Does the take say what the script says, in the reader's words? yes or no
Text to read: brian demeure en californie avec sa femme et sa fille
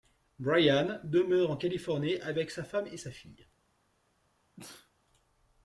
yes